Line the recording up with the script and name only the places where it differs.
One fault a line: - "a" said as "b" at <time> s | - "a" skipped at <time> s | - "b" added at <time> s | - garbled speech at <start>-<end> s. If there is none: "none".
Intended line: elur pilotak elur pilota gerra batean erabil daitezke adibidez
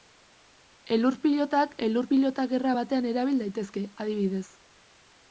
none